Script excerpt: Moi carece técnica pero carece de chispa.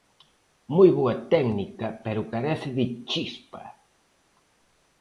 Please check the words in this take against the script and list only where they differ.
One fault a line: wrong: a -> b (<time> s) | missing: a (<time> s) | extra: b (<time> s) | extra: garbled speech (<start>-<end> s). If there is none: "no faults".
wrong: carece -> boa (1.0 s)